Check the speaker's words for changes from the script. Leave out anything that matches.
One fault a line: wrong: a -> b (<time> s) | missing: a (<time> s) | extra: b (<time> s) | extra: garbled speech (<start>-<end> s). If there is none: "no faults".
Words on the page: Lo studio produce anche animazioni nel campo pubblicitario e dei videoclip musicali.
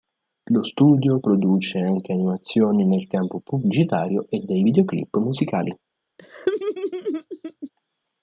no faults